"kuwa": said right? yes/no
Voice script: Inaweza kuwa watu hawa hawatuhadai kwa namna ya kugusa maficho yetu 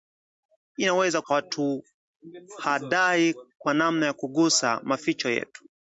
no